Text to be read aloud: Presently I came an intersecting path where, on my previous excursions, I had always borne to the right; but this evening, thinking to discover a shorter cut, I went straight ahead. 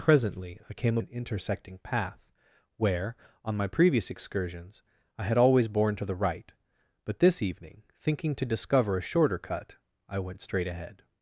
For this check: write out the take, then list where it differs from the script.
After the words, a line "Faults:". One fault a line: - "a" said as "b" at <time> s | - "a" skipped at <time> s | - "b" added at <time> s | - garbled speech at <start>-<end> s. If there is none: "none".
Presently I came an intersecting path where, on my previous excursions, I had always borne to the right; but this evening, thinking to discover a shorter cut, I went straight ahead.
Faults:
none